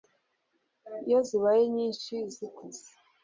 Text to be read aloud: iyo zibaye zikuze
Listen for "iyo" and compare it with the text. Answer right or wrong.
right